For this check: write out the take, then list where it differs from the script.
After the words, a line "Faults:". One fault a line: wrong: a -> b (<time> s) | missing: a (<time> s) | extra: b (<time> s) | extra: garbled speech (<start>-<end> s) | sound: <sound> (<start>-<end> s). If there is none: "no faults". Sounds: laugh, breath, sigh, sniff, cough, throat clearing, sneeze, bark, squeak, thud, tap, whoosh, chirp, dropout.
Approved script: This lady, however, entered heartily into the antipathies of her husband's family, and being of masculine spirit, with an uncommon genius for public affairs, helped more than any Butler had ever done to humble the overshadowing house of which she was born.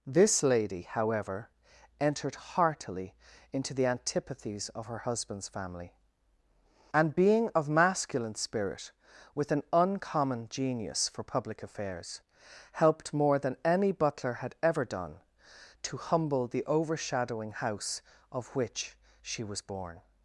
This lady, however, entered heartily into the antipathies of her husband's family, and being of masculine spirit, with an uncommon genius for public affairs, helped more than any Butler had ever done to humble the overshadowing house of which she was born.
Faults:
no faults